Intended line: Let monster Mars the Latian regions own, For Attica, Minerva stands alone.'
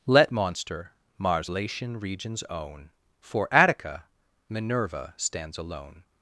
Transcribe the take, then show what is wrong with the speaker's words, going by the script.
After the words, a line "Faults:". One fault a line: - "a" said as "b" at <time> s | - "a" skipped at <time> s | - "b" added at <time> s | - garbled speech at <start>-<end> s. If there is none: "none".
Let monster Mars Latian regions own, For Attica, Minerva stands alone.'
Faults:
- "the" skipped at 1.5 s